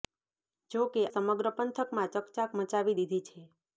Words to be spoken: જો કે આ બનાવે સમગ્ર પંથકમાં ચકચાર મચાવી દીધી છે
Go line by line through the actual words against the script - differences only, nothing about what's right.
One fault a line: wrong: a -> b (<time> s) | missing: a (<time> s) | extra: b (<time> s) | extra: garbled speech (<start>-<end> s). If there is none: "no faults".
missing: આ બનાવે (1.0 s)